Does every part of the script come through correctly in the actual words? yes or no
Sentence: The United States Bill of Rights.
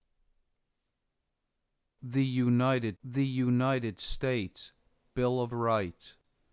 no